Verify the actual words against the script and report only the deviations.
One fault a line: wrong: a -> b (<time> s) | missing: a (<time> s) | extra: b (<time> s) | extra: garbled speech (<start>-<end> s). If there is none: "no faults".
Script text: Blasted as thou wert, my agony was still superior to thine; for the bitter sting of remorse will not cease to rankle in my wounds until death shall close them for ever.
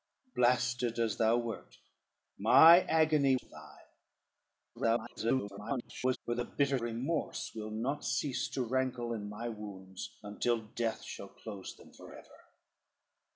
missing: was still superior (3.4 s)
extra: garbled speech (4.7-6.2 s)
missing: sting of (6.8 s)